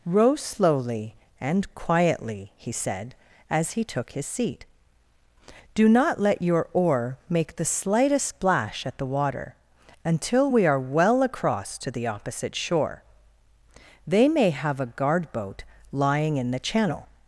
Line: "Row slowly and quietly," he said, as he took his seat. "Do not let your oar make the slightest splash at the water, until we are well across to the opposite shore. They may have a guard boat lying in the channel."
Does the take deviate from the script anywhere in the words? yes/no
no